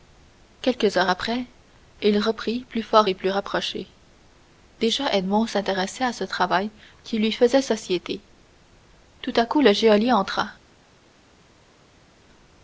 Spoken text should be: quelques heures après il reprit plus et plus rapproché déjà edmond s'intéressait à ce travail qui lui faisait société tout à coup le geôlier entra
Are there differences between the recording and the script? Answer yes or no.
yes